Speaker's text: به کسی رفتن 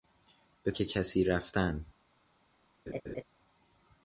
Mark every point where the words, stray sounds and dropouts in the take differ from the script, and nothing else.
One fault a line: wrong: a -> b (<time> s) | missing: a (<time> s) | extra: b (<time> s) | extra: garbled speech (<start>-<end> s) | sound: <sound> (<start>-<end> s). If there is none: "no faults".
sound: laugh (2.9-3.2 s)